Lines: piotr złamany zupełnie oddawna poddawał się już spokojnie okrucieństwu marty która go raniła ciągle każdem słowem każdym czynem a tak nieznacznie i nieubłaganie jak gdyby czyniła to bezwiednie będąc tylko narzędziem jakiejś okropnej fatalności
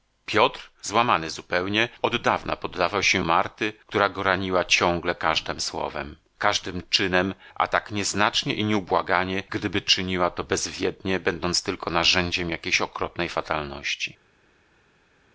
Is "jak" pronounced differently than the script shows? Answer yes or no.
yes